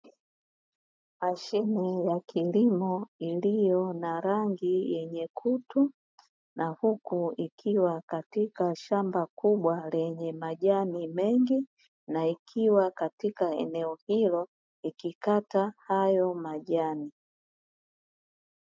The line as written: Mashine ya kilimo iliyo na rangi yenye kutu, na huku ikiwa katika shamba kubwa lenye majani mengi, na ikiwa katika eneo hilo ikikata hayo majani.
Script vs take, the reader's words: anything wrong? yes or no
no